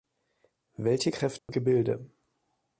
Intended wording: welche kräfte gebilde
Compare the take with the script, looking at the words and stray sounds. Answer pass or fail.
fail